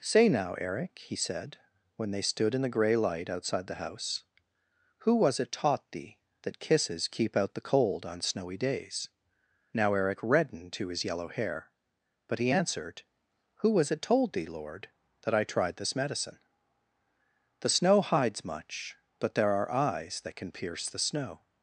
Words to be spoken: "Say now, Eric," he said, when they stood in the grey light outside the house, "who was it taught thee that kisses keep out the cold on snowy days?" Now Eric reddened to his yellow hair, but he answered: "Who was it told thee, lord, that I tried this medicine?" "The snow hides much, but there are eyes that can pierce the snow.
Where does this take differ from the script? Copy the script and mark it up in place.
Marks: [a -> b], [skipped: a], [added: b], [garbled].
"Say now, Eric," he said, when they stood in the grey light outside the house, "who was it taught thee that kisses keep out the cold on snowy days?" Now Eric reddened to his yellow hair, but he answered: "Who was it told thee, lord, that I tried this medicine?" "The snow hides much, but there are eyes that can pierce the snow.